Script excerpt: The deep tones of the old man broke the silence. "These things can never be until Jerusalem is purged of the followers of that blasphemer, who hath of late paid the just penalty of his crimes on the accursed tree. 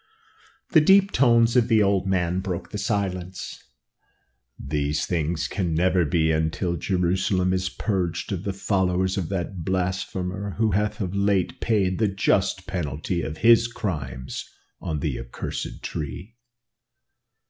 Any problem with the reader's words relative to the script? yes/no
no